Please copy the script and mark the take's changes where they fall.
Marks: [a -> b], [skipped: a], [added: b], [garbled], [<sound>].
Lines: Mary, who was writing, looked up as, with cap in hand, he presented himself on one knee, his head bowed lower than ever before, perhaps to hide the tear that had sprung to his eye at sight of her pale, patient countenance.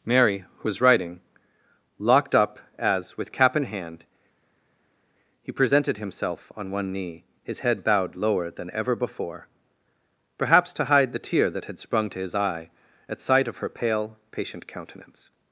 Mary, who was writing, [looked -> locked] up as, with cap in hand, he presented himself on one knee, his head bowed lower than ever before, perhaps to hide the tear that had sprung to his eye at sight of her pale, patient countenance.